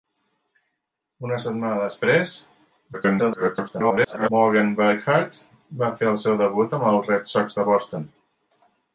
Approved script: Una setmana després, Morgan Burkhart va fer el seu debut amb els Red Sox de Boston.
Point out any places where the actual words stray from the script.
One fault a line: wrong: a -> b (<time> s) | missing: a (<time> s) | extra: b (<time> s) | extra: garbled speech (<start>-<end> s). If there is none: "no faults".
extra: garbled speech (2.9-4.3 s)